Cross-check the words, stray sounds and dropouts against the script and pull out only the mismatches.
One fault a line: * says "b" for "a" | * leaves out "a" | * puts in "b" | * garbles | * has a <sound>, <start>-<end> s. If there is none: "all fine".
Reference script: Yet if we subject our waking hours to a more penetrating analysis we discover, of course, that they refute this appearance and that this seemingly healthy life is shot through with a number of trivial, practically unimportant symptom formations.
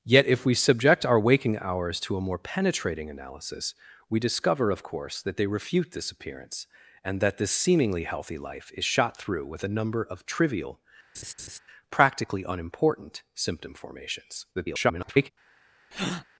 * has a laugh, 11.1-11.6 s
* garbles
* has a breath, 15.9-16.2 s